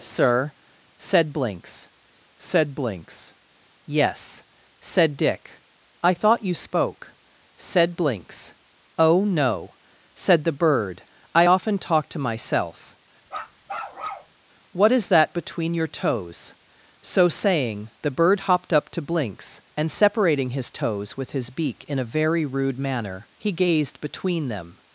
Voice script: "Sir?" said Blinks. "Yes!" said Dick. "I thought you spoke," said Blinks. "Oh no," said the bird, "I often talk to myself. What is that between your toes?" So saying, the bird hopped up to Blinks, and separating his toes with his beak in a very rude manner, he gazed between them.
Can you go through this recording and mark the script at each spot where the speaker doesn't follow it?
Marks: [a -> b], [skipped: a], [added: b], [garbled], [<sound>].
"Sir?" said Blinks. [added: said Blinks] "Yes!" said Dick. "I thought you spoke," said Blinks. "Oh no," said the bird, "I often talk to myself. [bark] What is that between your toes?" So saying, the bird hopped up to Blinks, and separating his toes with his beak in a very rude manner, he gazed between them.